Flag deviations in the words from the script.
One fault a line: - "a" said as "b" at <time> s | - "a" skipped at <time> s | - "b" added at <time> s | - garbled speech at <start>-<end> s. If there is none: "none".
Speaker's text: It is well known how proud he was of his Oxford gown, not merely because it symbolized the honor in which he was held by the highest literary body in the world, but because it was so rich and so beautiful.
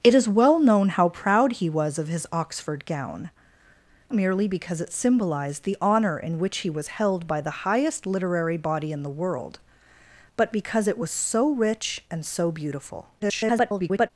- "not" skipped at 3.3 s
- garbled speech at 13.2-14.1 s